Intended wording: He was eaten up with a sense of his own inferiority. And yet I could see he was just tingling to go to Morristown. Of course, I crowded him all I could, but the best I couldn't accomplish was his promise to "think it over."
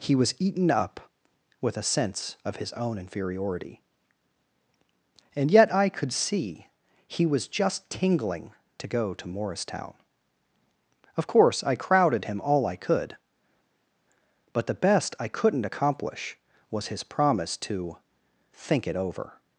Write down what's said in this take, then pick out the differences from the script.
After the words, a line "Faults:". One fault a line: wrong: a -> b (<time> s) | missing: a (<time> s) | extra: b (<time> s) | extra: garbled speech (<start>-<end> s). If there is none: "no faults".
He was eaten up with a sense of his own inferiority. And yet I could see he was just tingling to go to Morristown. Of course, I crowded him all I could, but the best I couldn't accomplish was his promise to "think it over."
Faults:
no faults